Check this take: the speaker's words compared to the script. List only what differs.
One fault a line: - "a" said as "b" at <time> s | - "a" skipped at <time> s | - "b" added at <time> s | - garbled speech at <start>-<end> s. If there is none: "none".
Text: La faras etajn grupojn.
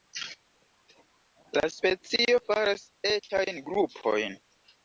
- "specio" added at 1.8 s